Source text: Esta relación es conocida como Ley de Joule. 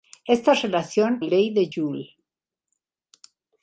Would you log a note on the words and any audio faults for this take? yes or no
yes